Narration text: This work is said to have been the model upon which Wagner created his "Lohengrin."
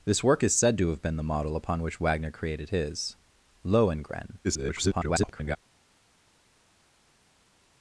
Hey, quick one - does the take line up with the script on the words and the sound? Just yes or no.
no